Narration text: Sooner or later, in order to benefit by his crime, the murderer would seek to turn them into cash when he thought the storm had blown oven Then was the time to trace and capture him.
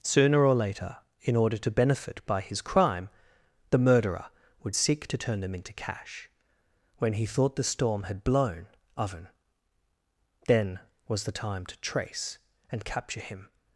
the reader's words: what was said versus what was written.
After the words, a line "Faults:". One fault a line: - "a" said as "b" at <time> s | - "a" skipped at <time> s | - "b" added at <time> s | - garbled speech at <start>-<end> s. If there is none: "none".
Sooner or later, in order to benefit by his crime, the murderer would seek to turn them into cash when he thought the storm had blown oven Then was the time to trace and capture him.
Faults:
none